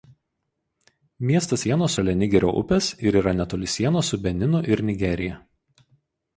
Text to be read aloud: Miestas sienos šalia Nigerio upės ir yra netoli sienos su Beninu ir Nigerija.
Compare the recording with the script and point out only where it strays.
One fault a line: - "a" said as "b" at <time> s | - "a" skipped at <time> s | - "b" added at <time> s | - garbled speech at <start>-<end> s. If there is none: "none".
none